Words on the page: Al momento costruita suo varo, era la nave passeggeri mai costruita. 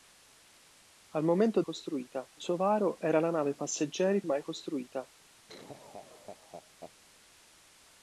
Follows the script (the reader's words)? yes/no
yes